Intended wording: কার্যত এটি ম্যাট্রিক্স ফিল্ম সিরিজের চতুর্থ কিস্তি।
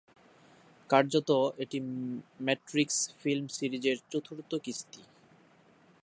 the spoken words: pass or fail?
pass